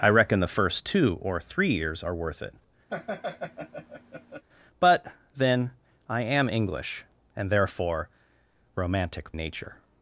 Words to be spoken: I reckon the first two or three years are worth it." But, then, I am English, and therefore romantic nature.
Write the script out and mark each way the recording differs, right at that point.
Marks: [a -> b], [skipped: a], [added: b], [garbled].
I reckon the first two or three years are worth it." But, then, I am English, and therefore romantic nature.